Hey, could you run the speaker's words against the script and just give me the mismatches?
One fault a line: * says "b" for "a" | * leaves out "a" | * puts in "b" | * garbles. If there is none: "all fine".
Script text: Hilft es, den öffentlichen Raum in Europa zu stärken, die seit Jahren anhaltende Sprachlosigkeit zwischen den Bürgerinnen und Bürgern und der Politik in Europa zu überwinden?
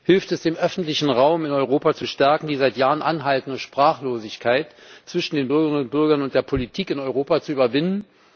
all fine